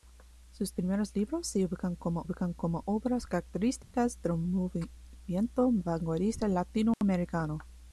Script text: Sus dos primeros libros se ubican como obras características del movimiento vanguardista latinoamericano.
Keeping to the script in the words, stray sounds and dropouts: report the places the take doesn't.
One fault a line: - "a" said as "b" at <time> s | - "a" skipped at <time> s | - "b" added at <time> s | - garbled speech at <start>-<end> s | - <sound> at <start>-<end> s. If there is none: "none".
- "dos" skipped at 0.7 s
- "ubican como" added at 2.2 s
- dropout at 3.8-3.9 s
- dropout at 6.9-7.0 s